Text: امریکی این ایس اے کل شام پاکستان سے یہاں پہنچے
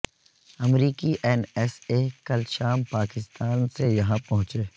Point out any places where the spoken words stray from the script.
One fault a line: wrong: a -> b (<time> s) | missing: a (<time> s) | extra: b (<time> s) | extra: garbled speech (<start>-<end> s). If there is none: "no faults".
no faults